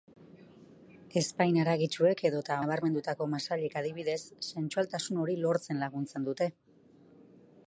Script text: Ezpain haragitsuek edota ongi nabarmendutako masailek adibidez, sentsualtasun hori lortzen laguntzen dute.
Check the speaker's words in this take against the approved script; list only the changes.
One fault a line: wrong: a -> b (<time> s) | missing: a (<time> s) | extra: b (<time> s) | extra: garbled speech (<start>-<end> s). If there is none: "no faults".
missing: ongi (2.6 s)